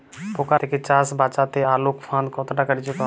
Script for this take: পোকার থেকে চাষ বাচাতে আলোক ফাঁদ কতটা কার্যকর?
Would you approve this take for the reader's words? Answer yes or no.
yes